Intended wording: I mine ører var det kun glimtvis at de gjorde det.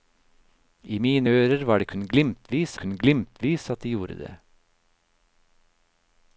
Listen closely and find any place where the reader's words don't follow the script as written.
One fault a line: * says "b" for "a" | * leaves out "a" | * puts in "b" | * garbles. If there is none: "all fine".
* puts in "kun glimtvis"